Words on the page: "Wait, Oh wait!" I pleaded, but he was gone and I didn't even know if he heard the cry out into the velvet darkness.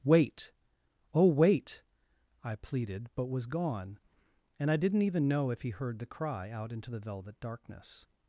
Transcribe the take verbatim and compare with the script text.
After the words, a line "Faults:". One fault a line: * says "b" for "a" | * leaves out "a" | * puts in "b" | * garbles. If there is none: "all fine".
"Wait, Oh wait!" I pleaded, but was gone and I didn't even know if he heard the cry out into the velvet darkness.
Faults:
* leaves out "he"